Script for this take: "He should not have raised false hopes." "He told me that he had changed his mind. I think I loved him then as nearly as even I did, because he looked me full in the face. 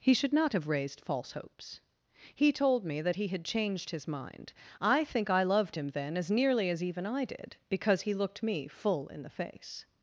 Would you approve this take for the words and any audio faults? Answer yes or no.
yes